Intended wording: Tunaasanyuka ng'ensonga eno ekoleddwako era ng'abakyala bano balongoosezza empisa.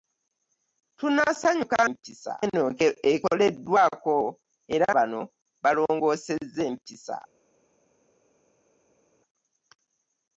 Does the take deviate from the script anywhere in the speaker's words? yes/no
yes